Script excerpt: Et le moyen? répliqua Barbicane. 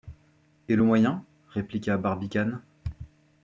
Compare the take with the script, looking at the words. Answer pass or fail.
pass